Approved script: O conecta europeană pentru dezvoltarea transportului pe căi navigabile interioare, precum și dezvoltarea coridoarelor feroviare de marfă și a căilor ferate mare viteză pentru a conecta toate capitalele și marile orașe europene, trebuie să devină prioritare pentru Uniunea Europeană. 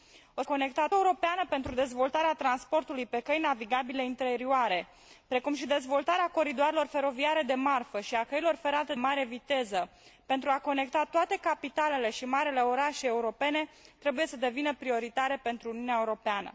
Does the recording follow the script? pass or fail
pass